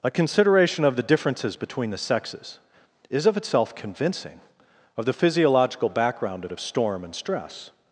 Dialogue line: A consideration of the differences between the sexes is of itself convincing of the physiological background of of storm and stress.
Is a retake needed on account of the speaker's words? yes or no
no